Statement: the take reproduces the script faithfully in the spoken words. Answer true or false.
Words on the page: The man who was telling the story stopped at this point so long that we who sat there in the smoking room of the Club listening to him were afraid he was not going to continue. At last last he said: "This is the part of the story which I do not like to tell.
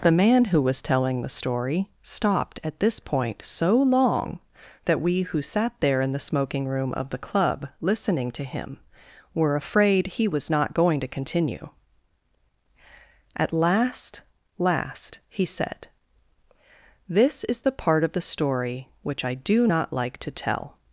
true